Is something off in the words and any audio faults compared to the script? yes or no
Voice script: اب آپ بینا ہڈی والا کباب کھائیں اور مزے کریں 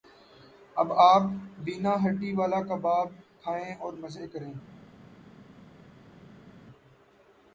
no